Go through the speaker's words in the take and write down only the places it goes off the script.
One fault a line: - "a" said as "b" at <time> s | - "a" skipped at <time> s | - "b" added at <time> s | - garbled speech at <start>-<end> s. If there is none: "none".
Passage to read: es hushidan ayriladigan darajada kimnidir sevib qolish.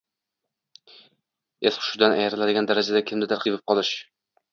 none